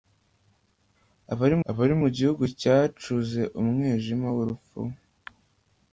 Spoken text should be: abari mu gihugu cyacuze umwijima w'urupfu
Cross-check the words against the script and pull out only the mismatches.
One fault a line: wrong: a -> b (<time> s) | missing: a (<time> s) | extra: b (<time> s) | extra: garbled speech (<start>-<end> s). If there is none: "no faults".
extra: abari (1.7 s)